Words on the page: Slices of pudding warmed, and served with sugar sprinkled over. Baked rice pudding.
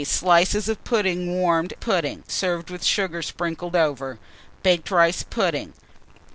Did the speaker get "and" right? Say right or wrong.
wrong